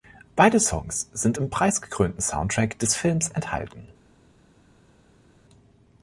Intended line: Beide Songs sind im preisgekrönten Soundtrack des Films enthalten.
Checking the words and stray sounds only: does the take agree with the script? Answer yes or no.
yes